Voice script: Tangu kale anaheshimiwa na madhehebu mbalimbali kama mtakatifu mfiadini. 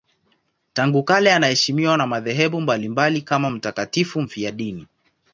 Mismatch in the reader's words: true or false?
false